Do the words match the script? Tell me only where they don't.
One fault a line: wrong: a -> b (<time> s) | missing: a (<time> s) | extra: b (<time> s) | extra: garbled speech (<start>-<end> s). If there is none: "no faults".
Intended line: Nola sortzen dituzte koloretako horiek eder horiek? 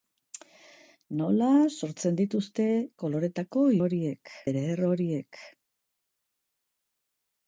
no faults